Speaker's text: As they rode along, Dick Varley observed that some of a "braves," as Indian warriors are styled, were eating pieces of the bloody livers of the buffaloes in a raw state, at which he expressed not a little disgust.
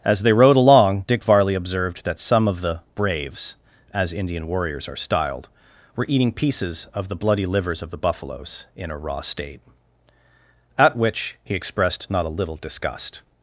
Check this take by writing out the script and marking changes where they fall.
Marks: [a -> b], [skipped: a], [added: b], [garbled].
As they rode along, Dick Varley observed that some of [a -> the] "braves," as Indian warriors are styled, were eating pieces of the bloody livers of the buffaloes in a raw state, at which he expressed not a little disgust.